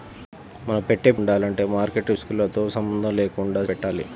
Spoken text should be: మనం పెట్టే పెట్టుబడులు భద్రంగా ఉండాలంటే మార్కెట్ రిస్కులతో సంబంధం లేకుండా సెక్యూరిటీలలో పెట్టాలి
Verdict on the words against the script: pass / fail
fail